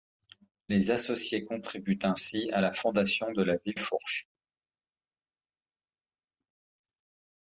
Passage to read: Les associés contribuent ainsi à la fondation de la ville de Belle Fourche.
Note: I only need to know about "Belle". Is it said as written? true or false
false